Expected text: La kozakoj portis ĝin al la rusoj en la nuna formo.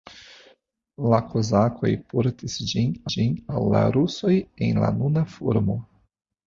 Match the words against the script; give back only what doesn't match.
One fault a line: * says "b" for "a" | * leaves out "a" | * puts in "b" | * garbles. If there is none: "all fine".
* puts in "ĝin"